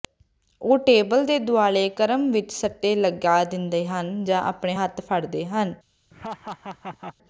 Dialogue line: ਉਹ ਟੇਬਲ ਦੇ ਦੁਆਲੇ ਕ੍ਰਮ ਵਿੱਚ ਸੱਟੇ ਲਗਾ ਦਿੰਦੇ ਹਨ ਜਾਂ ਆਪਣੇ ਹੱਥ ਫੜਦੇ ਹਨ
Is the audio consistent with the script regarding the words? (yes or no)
yes